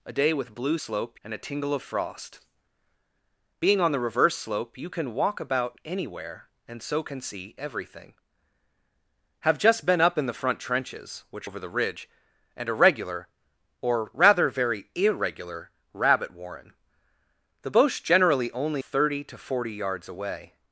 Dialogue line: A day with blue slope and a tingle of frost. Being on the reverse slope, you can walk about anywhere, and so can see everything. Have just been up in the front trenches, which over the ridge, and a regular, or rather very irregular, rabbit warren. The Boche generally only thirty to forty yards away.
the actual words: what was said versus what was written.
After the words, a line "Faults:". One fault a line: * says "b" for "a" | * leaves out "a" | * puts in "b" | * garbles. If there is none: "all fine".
A day with blue slope and a tingle of frost. Being on the reverse slope, you can walk about anywhere, and so can see everything. Have just been up in the front trenches, which over the ridge, and a regular, or rather very irregular, rabbit warren. The Boche generally only thirty to forty yards away.
Faults:
all fine